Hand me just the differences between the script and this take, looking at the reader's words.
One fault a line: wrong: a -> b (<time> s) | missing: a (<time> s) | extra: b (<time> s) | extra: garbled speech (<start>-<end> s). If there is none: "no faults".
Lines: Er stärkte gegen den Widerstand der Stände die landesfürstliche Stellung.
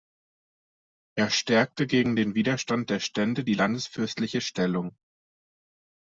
no faults